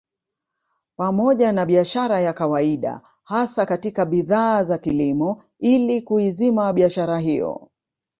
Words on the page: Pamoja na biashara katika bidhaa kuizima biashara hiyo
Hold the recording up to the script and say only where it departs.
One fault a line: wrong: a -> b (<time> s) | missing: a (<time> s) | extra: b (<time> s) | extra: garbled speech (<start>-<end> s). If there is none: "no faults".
extra: ya kawaida hasa (2.2 s)
extra: za kilimo ili (4.6 s)